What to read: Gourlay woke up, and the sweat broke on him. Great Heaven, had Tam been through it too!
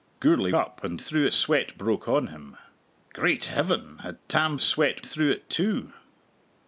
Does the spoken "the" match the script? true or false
false